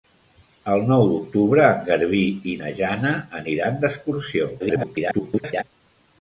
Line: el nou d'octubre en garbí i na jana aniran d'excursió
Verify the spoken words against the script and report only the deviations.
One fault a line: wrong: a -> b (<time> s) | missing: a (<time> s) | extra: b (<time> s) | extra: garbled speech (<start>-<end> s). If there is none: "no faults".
extra: garbled speech (4.6-5.6 s)